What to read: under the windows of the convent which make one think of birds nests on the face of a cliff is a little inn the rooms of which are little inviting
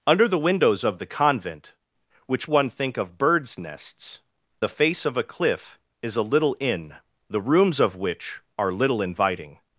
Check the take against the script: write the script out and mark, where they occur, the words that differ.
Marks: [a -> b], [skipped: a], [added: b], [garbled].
under the windows of the convent which [skipped: make] one think of birds nests [skipped: on] the face of a cliff is a little inn the rooms of which are little inviting